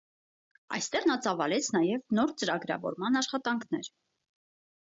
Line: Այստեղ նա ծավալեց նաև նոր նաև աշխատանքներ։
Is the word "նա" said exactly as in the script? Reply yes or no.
yes